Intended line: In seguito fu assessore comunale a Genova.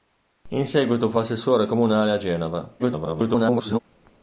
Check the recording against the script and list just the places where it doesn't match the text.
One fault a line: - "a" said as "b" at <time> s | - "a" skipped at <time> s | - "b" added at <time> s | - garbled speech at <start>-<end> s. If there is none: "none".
- garbled speech at 2.8-3.8 s